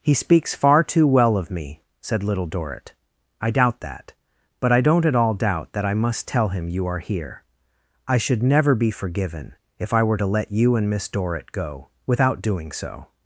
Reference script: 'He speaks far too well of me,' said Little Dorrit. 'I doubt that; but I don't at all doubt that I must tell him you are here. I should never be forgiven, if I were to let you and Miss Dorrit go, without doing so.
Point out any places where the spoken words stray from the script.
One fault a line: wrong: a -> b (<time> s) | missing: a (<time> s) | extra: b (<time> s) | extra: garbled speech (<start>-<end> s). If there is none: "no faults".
no faults